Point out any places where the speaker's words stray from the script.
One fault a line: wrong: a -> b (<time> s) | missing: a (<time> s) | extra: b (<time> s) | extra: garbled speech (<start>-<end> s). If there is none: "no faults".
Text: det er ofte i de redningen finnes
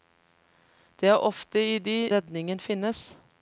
no faults